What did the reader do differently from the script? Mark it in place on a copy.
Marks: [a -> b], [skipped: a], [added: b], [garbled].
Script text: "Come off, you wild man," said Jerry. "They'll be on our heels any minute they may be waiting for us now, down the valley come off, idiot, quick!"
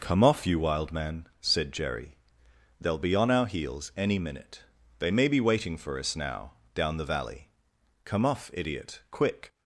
"Come off, you wild man," said Jerry. "They'll be on our heels any minute they may be waiting for us now, down the valley come off, idiot, quick!"